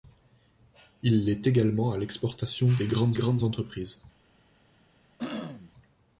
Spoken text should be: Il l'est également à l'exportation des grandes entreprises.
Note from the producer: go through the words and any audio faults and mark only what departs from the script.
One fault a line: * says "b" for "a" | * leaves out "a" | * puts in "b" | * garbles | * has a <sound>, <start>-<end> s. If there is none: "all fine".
* puts in "grandes"
* has a throat clearing, 5.2-5.7 s